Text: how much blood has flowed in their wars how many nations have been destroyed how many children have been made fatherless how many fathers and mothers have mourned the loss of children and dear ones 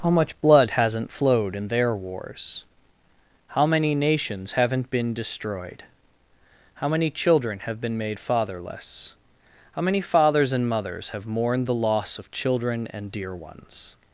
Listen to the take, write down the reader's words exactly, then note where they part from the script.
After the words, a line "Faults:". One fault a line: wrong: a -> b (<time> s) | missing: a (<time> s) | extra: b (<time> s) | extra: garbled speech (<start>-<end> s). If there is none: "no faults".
how much blood hasn't flowed in their wars how many nations haven't been destroyed how many children have been made fatherless how many fathers and mothers have mourned the loss of children and dear ones
Faults:
wrong: has -> hasn't (0.7 s)
wrong: have -> haven't (4.5 s)